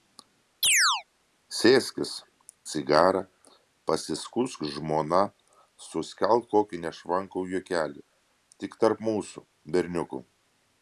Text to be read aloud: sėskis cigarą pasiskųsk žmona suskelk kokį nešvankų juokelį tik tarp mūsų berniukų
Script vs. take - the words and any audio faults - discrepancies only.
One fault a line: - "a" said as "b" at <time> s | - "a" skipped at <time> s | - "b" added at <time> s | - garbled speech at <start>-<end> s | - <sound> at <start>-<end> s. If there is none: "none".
- chirp at 0.6-1.0 s